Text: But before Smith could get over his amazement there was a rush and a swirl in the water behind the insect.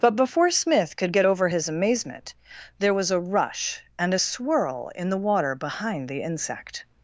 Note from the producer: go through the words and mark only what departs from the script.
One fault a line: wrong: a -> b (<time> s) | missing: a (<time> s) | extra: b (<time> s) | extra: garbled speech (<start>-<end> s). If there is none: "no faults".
no faults